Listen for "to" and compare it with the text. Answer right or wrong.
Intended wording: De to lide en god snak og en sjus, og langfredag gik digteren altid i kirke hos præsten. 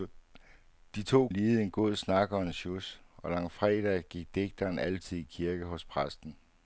right